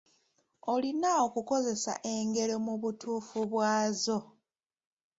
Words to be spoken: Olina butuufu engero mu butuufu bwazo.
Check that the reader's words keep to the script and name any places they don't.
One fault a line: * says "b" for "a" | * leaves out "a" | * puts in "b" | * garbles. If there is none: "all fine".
* says "okukozesa" for "butuufu"